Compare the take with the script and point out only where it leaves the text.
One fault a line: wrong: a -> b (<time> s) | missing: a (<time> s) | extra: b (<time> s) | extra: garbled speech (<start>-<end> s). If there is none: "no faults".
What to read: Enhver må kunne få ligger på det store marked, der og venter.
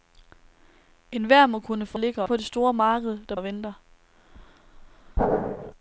no faults